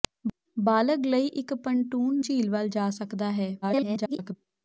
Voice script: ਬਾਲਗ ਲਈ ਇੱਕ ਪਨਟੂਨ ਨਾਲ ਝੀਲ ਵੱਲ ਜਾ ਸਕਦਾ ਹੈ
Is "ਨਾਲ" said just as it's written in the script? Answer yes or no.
no